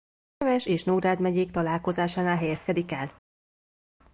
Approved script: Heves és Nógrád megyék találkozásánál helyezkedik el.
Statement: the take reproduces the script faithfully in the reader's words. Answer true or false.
true